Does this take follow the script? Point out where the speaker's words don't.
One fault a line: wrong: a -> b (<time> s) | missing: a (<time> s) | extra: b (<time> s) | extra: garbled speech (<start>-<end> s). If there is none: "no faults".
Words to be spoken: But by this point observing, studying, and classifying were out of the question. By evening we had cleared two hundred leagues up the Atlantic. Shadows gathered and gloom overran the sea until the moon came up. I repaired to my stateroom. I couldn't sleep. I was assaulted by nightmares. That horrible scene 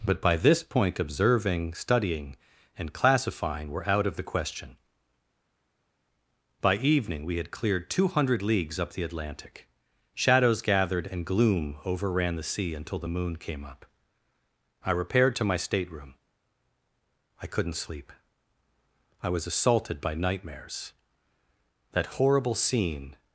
no faults